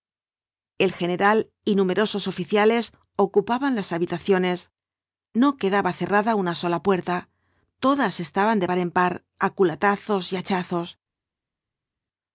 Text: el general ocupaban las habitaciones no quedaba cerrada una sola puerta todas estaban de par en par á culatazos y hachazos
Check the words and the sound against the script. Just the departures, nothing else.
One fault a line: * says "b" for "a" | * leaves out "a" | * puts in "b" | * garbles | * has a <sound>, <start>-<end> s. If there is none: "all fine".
* puts in "y numerosos oficiales"